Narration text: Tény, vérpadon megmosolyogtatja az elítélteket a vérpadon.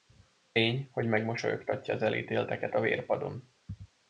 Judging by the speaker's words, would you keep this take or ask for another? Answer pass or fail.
fail